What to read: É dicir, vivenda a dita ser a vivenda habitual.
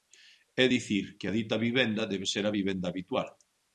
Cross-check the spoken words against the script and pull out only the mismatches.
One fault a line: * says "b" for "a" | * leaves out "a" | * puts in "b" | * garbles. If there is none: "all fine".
* says "que" for "vivenda"
* puts in "vivenda debe"